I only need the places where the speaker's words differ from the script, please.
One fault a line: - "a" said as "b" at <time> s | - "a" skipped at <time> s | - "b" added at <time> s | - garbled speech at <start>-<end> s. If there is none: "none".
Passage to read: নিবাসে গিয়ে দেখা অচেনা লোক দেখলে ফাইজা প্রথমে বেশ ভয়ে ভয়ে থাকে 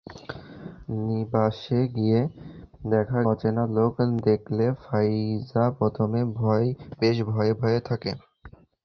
none